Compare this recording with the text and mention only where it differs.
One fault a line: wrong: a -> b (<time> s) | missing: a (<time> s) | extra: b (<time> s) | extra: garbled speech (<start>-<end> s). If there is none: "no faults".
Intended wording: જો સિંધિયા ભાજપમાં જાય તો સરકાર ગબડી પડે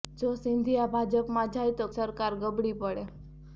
no faults